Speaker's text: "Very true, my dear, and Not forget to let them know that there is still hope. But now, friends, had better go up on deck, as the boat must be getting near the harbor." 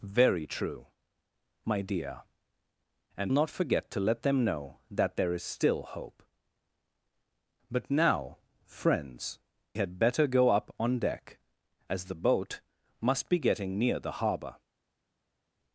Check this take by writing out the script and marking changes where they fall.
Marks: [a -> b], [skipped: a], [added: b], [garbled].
"Very true, my dear, and Not forget to let them know that there is still hope. But now, friends, had better go up on deck, as the boat must be getting near the harbor."